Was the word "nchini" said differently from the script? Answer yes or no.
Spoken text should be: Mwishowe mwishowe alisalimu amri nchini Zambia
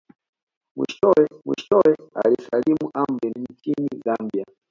no